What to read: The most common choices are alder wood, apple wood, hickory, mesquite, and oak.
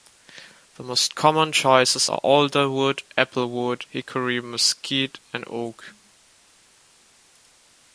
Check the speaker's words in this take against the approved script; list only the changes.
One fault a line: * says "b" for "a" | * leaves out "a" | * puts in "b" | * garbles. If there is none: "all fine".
all fine